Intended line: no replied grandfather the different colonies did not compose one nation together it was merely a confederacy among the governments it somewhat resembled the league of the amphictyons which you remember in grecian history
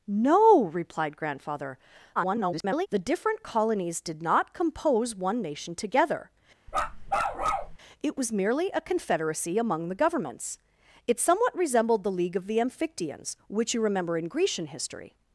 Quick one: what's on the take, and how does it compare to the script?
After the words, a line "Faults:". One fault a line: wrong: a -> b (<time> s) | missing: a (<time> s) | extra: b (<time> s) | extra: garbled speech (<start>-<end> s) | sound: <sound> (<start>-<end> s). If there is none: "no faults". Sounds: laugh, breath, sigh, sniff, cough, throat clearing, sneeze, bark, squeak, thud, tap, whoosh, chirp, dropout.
no replied grandfather [garbled] the different colonies did not compose one nation together it was merely a confederacy among the governments it somewhat resembled the league of the amphictyons which you remember in grecian history
Faults:
extra: garbled speech (2.2-2.9 s)
sound: bark (6.7-7.8 s)